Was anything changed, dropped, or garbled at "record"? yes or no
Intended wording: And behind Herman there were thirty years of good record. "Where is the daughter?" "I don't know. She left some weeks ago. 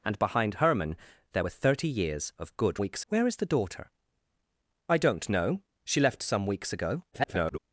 yes